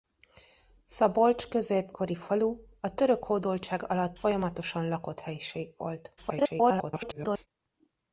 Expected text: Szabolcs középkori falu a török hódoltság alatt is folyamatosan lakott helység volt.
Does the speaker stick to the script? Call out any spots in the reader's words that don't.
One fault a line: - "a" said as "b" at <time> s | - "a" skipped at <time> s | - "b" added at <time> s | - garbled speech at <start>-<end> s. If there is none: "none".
- "is" skipped at 4.2 s
- garbled speech at 6.2-7.5 s